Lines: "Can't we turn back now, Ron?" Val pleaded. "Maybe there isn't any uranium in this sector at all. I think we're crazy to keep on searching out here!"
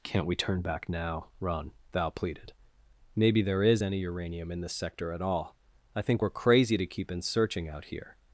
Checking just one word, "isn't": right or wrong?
wrong